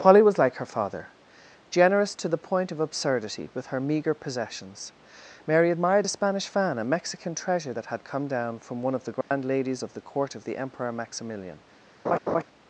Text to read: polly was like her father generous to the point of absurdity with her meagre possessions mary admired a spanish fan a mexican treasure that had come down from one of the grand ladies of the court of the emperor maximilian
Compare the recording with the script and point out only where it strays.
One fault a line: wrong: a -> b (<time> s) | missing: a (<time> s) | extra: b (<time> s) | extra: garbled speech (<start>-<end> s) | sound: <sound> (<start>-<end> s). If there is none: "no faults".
sound: dropout (9.2-9.3 s)
sound: laugh (12.0-12.4 s)